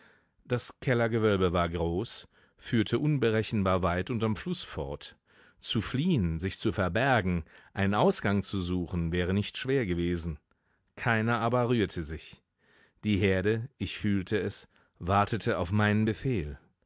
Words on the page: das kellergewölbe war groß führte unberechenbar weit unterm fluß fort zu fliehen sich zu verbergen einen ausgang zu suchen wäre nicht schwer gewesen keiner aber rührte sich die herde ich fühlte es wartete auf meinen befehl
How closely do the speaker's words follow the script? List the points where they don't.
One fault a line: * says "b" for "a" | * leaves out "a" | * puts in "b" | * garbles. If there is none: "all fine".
all fine